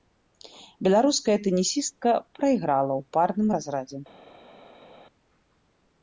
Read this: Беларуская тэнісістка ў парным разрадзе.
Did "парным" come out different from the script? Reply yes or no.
no